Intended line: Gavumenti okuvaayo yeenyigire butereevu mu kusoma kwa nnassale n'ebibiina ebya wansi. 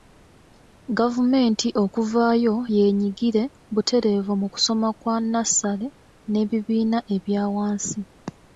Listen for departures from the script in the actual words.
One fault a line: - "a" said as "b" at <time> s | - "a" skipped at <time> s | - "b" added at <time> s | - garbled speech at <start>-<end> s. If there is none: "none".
none